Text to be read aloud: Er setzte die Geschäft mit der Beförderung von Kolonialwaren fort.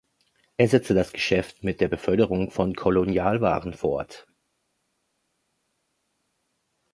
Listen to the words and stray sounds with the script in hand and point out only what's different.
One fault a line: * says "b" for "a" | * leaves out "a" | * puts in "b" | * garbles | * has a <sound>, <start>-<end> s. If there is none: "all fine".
* says "das" for "die"